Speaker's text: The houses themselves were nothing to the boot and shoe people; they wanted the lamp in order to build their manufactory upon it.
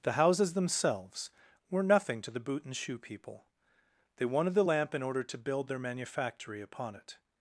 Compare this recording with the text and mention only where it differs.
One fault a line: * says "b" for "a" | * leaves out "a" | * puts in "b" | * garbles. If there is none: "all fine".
all fine